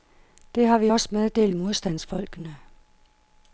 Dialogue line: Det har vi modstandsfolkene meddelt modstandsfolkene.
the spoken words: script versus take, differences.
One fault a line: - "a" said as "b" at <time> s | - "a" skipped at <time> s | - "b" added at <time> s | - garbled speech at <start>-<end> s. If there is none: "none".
- "modstandsfolkene" said as "også" at 0.9 s